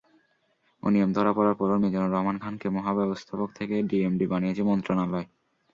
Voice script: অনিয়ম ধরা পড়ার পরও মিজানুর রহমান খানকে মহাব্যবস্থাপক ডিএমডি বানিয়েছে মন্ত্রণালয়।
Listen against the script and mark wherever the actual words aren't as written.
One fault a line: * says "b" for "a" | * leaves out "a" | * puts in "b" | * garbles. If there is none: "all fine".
* puts in "থেকে"